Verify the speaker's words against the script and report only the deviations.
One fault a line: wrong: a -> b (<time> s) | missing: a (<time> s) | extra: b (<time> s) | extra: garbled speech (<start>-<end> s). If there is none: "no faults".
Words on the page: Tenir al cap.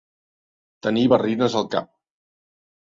extra: barrines (1.2 s)